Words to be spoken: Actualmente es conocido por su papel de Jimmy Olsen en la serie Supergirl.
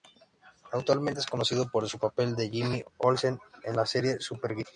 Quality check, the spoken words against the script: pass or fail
pass